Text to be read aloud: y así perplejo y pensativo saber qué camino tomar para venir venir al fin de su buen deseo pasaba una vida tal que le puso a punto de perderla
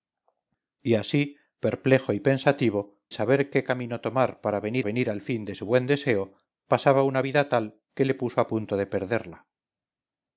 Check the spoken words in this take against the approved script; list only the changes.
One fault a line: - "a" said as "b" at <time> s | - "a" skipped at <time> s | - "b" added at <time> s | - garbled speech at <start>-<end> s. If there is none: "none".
none